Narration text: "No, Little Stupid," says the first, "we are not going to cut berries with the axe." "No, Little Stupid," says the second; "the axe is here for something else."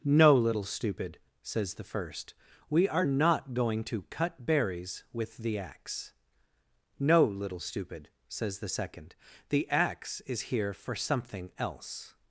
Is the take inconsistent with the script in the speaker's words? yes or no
no